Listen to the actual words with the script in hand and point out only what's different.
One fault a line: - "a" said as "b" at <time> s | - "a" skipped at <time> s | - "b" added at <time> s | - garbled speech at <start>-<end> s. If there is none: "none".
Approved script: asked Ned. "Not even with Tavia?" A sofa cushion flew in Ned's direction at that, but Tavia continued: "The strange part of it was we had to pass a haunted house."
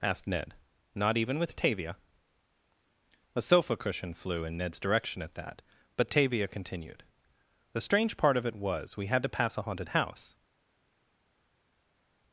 none